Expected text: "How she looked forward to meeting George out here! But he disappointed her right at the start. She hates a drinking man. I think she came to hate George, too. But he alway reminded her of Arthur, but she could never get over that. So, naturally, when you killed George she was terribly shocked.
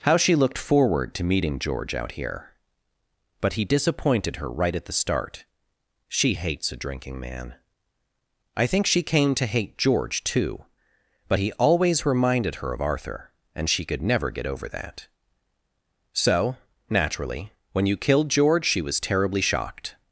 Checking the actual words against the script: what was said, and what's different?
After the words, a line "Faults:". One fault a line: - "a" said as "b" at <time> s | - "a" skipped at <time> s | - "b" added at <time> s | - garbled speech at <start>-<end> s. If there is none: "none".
"How she looked forward to meeting George out here! But he disappointed her right at the start. She hates a drinking man. I think she came to hate George, too. But he always reminded her of Arthur, and she could never get over that. So, naturally, when you killed George she was terribly shocked.
Faults:
- "alway" said as "always" at 11.5 s
- "but" said as "and" at 13.6 s